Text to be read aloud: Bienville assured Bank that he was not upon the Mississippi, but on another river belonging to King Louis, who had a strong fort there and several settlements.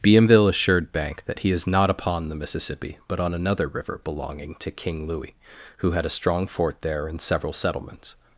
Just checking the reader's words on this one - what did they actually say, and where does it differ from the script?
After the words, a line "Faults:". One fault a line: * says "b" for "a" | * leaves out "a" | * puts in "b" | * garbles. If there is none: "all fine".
Bienville assured Bank that he is not upon the Mississippi, but on another river belonging to King Louis, who had a strong fort there and several settlements.
Faults:
* says "is" for "was"